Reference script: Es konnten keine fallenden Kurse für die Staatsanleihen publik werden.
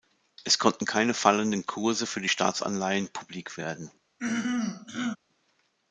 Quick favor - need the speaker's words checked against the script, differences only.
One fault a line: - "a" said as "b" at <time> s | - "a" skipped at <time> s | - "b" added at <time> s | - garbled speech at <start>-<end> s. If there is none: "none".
none